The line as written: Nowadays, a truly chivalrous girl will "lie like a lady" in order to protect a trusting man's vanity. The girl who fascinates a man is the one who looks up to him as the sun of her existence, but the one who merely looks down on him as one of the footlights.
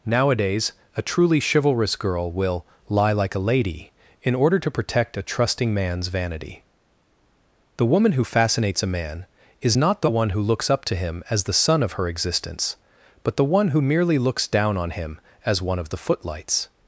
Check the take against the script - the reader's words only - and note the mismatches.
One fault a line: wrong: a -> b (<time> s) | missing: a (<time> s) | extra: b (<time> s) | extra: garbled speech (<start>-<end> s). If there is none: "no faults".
wrong: girl -> woman (7.8 s)
extra: not (9.7 s)